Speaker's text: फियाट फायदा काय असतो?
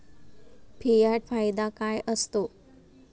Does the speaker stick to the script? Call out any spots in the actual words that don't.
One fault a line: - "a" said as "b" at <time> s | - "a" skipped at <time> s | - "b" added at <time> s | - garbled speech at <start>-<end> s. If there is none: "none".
none